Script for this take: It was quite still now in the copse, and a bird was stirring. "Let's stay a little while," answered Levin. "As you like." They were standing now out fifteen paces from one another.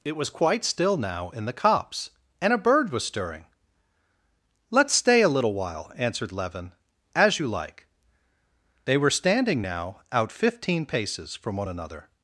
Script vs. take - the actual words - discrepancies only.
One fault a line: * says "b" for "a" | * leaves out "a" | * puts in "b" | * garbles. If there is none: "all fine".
all fine